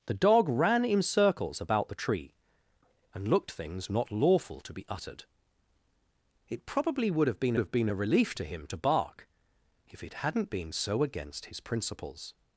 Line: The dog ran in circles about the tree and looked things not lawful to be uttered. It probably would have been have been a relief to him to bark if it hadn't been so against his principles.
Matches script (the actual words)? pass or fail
pass